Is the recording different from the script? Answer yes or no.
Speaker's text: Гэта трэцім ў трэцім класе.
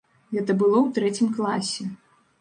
yes